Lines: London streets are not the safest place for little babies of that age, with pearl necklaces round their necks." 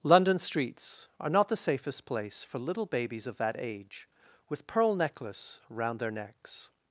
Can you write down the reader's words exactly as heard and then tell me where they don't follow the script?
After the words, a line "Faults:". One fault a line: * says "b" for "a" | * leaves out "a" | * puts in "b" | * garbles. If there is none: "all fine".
London streets are not the safest place for little babies of that age, with pearl necklace round their necks."
Faults:
* says "necklace" for "necklaces"